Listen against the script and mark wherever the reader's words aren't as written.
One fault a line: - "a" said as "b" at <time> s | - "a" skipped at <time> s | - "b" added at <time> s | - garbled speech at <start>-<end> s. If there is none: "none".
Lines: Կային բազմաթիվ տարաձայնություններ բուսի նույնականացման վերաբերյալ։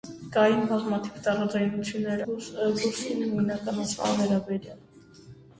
none